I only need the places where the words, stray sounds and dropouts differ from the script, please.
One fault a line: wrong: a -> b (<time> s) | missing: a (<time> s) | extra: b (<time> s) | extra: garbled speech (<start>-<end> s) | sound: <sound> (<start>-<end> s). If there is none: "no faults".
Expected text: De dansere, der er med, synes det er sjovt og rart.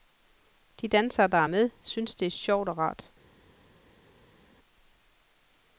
no faults